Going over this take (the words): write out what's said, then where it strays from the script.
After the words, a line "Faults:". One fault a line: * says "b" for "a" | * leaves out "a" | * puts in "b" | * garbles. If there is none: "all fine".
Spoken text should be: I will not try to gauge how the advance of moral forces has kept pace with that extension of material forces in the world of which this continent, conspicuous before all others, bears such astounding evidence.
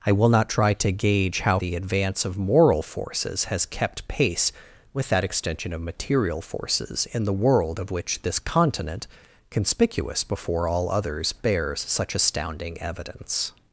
I will not try to gauge how the advance of moral forces has kept pace with that extension of material forces in the world of which this continent, conspicuous before all others, bears such astounding evidence.
Faults:
all fine